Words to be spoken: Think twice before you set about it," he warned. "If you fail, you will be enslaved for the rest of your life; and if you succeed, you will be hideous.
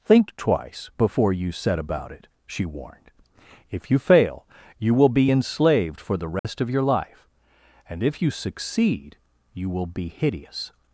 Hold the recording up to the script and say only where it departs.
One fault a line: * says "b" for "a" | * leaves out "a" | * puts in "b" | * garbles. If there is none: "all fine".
* says "she" for "he"